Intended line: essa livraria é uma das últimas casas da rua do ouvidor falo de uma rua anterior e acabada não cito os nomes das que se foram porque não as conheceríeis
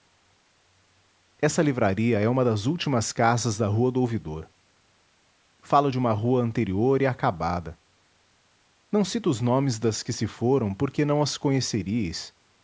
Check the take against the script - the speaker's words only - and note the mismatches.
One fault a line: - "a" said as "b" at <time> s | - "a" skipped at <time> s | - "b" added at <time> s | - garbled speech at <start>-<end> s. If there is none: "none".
none